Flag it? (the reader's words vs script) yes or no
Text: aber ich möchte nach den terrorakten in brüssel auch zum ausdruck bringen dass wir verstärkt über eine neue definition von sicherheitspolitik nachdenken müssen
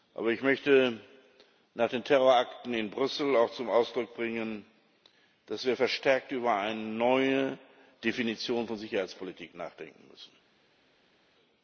no